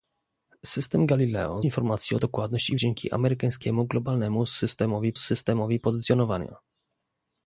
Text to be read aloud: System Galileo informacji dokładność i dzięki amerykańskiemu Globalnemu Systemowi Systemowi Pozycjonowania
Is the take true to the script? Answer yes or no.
yes